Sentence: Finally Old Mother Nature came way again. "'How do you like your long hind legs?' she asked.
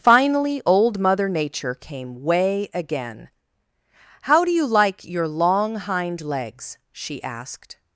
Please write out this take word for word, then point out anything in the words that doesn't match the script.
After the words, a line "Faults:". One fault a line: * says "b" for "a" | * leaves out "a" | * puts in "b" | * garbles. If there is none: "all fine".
Finally Old Mother Nature came way again. "'How do you like your long hind legs?' she asked.
Faults:
all fine